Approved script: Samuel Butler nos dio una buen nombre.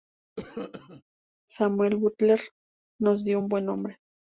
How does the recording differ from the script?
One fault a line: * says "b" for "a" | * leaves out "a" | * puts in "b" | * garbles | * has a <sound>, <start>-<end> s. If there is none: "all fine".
* has a cough, 0.4-1.0 s
* says "un" for "una"